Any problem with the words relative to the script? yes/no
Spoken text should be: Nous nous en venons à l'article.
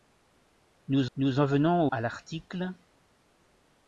no